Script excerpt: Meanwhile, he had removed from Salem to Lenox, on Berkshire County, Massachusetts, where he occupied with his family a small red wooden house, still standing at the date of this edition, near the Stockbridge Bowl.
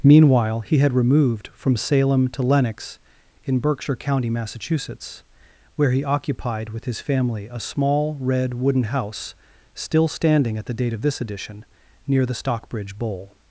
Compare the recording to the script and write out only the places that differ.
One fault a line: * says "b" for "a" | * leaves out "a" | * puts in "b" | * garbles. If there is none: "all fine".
* says "in" for "on"